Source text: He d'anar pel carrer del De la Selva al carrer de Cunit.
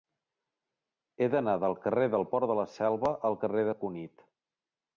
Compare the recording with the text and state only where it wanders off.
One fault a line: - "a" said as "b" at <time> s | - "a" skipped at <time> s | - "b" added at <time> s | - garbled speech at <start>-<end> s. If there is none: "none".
- "pel" said as "del" at 1.6 s
- "Port" added at 2.3 s